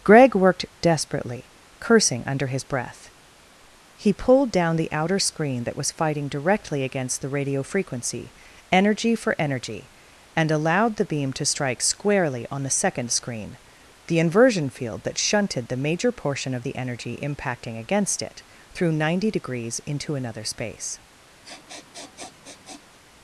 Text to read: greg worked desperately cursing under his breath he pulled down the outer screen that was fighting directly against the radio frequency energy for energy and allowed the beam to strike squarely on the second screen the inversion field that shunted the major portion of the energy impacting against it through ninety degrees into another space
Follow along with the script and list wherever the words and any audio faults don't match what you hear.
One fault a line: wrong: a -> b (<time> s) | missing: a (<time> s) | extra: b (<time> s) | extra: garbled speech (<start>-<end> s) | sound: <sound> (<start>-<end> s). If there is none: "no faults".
sound: sniff (21.4-23.0 s)